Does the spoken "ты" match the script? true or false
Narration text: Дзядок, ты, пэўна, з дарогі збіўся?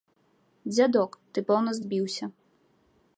true